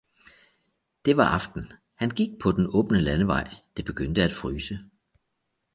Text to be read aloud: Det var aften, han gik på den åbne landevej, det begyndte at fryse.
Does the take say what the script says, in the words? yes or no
yes